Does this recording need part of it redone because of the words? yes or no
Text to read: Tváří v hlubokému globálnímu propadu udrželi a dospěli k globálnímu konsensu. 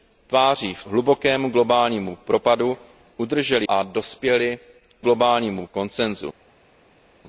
no